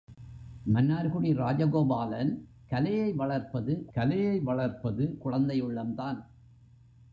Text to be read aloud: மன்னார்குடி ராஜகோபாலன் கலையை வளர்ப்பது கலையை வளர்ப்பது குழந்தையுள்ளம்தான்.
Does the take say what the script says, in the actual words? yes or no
yes